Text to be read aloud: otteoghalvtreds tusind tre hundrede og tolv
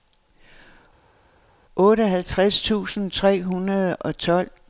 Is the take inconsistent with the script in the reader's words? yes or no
no